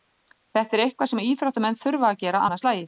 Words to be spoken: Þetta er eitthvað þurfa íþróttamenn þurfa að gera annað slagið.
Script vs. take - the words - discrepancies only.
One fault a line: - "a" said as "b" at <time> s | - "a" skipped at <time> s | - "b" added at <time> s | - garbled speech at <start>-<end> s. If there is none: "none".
- "þurfa" said as "sem" at 1.1 s